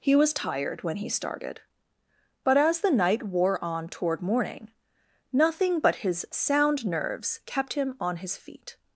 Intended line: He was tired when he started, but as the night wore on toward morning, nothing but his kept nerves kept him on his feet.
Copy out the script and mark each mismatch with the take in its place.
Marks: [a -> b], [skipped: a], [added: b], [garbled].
He was tired when he started, but as the night wore on toward morning, nothing but his [kept -> sound] nerves kept him on his feet.